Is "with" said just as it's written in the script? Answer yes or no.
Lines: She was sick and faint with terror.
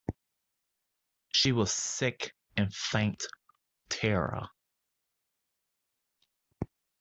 no